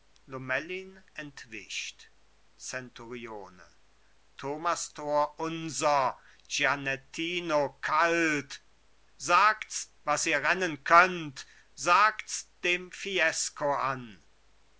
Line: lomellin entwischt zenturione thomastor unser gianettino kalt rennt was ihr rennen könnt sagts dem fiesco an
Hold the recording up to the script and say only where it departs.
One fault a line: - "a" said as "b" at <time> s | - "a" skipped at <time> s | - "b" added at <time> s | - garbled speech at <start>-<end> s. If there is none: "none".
- "rennt" said as "sagts" at 9.2 s